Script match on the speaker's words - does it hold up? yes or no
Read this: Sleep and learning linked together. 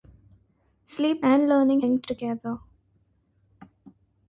yes